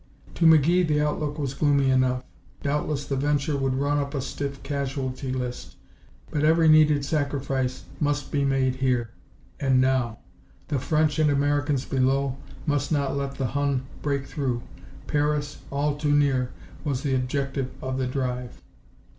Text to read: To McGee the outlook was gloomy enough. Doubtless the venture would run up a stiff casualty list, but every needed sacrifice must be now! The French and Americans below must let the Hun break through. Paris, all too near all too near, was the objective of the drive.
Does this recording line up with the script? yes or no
no